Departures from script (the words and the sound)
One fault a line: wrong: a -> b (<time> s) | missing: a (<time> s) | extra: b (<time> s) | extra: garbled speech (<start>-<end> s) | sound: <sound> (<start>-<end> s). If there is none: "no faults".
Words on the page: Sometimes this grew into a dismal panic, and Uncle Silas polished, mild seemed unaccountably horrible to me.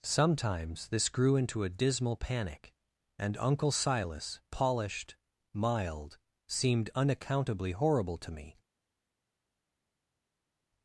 no faults